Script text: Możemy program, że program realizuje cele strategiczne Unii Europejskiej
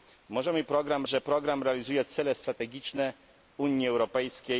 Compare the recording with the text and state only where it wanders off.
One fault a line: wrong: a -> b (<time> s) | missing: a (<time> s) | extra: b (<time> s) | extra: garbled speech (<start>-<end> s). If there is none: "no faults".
no faults